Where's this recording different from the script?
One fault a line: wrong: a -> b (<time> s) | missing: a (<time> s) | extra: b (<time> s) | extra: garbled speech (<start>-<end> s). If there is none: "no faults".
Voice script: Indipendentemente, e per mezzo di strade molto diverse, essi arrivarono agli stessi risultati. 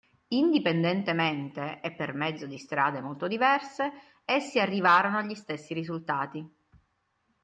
no faults